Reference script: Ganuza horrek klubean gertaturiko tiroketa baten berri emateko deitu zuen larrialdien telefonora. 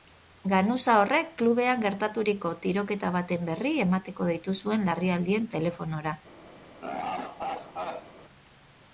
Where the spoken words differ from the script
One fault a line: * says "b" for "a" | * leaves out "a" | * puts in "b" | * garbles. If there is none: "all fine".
all fine